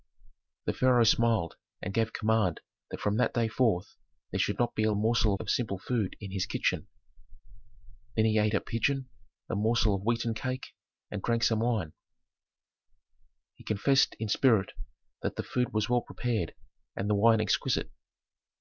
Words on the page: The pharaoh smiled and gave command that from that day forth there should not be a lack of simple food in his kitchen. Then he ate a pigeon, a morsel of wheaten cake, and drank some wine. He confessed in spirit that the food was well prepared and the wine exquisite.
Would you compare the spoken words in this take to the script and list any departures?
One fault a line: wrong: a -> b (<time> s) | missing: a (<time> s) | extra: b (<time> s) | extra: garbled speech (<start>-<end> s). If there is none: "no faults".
wrong: lack -> morsel (4.9 s)